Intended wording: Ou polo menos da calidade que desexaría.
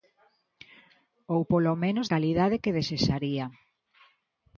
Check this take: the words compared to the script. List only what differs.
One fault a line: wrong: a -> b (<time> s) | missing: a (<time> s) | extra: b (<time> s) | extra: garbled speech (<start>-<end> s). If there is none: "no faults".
missing: da (2.1 s)